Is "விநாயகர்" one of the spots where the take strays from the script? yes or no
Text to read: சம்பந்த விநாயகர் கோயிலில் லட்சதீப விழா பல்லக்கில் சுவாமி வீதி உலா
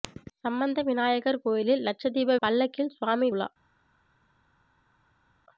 no